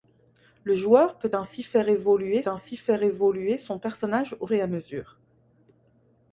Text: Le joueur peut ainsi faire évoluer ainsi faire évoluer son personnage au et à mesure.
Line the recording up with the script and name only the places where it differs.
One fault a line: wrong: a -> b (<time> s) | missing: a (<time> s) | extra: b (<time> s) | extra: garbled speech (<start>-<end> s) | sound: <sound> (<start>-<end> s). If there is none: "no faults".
no faults